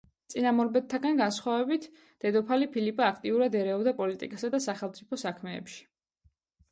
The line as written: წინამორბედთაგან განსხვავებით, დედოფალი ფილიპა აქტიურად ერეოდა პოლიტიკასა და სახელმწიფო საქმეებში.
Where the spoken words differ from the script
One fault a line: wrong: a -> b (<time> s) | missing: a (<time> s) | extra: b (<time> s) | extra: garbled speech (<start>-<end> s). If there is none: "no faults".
no faults